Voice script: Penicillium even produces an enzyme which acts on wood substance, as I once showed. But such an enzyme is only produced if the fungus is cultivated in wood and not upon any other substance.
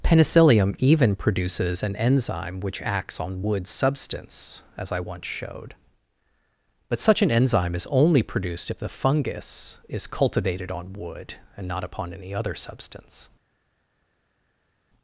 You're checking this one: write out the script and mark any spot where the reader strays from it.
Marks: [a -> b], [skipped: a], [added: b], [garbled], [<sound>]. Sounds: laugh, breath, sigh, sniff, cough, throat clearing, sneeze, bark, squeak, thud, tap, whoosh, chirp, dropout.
Penicillium even produces an enzyme which acts on wood substance, as I once showed. But such an enzyme is only produced if the fungus is cultivated [in -> on] wood and not upon any other substance.